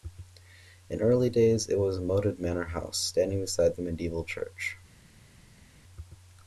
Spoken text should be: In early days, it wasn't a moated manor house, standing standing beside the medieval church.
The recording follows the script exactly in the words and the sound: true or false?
false